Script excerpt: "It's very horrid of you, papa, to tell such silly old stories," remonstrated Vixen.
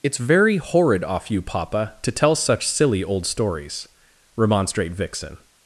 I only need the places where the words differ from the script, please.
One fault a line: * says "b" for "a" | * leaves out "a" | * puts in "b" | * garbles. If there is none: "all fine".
* says "off" for "of"
* says "remonstrate" for "remonstrated"